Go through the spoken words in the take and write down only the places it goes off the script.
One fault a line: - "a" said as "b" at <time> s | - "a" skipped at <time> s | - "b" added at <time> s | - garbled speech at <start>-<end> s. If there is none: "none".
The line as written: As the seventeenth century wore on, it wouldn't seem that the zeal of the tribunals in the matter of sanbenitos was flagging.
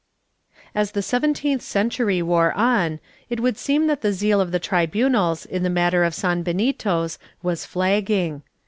- "wouldn't" said as "would" at 3.4 s